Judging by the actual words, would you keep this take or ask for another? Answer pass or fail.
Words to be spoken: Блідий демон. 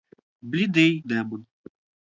pass